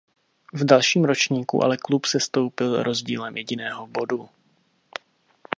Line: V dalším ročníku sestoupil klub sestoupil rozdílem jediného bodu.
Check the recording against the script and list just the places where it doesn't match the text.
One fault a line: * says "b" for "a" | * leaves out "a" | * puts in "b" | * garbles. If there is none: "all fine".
* says "ale" for "sestoupil"